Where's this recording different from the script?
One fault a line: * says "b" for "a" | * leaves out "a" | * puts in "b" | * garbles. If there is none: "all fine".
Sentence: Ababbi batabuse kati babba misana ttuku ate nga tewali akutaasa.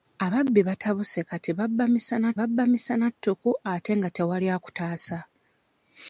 * puts in "babba misana"